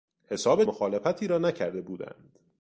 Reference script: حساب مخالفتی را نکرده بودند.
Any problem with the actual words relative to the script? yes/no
no